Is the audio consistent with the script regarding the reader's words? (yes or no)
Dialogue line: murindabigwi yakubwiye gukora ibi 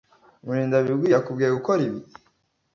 yes